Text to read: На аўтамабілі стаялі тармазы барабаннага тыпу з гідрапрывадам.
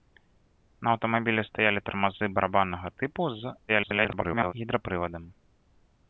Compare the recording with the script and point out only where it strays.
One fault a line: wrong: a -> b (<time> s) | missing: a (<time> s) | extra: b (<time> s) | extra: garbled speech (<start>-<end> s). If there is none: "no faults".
extra: garbled speech (3.7-4.5 s)